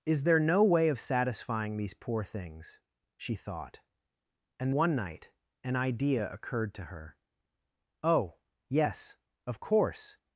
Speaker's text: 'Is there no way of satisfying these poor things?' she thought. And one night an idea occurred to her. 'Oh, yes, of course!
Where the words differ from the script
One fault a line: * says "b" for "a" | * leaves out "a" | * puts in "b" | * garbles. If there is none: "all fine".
all fine